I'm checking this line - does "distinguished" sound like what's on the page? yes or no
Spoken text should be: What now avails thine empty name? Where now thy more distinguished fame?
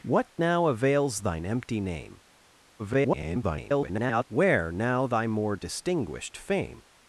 yes